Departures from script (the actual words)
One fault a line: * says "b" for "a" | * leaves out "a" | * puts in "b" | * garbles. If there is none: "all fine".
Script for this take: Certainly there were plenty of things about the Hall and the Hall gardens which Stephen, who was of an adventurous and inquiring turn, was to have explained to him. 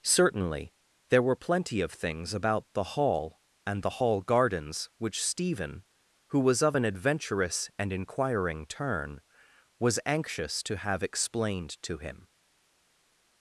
* puts in "anxious"